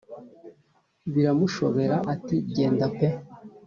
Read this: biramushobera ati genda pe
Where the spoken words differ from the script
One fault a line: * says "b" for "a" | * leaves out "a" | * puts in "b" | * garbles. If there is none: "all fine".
all fine